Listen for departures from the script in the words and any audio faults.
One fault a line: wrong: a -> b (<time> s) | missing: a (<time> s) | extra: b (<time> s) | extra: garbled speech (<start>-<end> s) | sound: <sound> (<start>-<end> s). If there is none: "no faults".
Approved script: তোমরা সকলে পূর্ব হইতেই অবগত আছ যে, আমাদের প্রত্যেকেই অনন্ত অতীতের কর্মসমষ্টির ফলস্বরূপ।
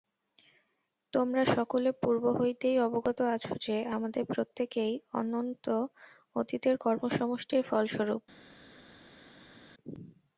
no faults